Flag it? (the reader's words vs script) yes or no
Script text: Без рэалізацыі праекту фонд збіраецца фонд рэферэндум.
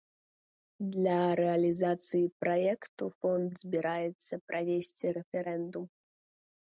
yes